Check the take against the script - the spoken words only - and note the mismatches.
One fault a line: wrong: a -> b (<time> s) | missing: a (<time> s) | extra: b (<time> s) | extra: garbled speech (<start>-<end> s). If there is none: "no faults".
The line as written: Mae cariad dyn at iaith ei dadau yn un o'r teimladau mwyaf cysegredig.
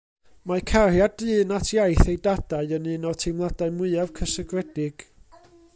no faults